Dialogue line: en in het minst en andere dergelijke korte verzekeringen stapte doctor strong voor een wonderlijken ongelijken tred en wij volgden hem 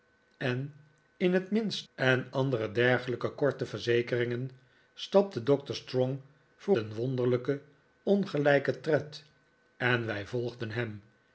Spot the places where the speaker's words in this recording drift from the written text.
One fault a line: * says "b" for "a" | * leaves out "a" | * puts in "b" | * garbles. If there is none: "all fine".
all fine